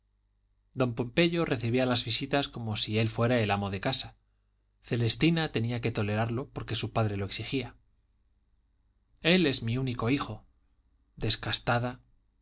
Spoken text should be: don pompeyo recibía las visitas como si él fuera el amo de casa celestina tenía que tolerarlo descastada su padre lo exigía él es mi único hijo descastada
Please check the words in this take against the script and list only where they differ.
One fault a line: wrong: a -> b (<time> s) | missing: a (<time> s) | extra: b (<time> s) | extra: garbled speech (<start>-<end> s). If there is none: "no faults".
wrong: descastada -> porque (6.5 s)